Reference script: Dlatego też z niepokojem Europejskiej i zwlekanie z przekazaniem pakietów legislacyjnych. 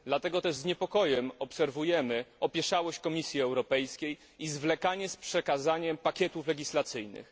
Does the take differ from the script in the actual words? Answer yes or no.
yes